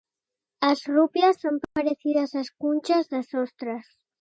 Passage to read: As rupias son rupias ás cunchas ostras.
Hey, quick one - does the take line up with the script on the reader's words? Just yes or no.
no